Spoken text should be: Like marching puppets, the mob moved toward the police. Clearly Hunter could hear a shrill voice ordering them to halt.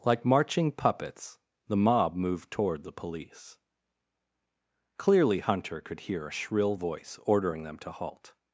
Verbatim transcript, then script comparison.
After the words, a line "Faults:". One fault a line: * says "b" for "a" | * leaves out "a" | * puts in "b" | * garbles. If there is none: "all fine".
Like marching puppets, the mob moved toward the police. Clearly Hunter could hear a shrill voice ordering them to halt.
Faults:
all fine